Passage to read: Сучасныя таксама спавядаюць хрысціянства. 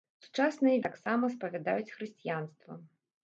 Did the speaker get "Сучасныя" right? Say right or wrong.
right